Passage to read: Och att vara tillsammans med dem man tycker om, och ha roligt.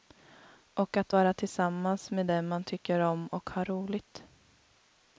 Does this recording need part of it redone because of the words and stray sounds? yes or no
no